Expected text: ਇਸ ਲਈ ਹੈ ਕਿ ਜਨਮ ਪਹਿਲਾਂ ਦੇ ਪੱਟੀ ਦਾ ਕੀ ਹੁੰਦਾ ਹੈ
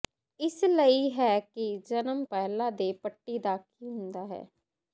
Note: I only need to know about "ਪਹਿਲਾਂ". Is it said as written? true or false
true